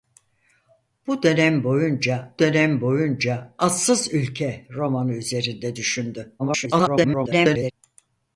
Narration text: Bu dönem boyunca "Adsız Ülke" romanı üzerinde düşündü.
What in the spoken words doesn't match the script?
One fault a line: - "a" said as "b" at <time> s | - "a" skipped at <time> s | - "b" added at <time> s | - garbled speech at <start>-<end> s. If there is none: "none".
- "dönem boyunca" added at 2.4 s
- garbled speech at 6.4-7.7 s